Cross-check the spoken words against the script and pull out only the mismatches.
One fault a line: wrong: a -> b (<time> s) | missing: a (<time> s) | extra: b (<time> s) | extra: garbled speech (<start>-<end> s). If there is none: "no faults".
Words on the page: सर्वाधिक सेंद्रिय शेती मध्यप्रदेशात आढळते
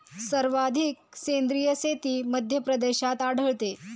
no faults